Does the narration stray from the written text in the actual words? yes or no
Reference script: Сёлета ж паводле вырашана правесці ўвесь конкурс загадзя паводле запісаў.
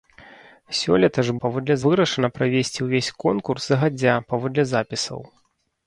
no